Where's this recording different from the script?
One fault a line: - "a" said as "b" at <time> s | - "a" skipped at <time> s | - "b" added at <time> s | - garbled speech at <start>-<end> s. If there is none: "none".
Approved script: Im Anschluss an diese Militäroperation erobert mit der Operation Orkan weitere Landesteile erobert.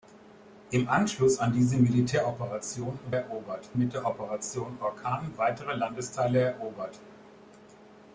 none